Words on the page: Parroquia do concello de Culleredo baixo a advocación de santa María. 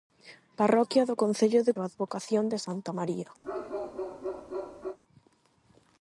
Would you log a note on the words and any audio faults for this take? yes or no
yes